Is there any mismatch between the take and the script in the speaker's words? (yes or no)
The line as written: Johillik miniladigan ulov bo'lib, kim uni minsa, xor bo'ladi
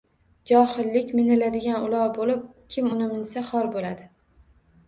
no